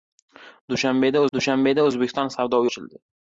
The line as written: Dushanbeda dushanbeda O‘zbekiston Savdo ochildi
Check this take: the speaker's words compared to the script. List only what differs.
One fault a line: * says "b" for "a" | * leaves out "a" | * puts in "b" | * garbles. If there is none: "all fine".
all fine